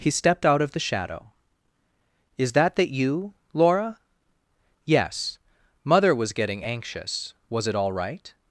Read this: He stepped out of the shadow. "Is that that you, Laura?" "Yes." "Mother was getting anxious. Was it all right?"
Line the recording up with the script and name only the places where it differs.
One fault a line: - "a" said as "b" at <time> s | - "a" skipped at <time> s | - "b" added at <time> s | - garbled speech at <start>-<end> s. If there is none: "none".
none